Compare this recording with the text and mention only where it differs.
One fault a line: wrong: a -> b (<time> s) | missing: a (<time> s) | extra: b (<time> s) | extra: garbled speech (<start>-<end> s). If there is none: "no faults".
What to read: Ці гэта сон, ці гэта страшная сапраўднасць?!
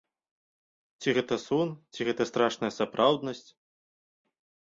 no faults